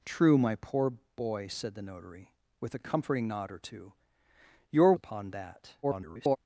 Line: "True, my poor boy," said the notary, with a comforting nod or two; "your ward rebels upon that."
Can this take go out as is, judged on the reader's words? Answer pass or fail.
fail